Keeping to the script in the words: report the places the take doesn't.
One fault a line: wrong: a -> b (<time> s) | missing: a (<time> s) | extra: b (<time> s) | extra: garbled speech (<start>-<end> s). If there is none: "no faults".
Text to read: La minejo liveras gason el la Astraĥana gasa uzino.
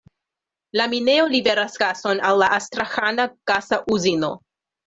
wrong: el -> al (2.3 s)